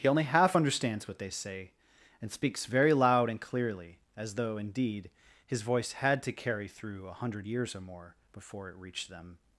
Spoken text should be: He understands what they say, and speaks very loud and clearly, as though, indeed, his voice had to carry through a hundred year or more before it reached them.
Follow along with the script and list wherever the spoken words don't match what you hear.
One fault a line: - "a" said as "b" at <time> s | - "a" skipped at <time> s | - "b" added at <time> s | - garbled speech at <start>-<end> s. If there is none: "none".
- "only half" added at 0.1 s
- "year" said as "years" at 7.4 s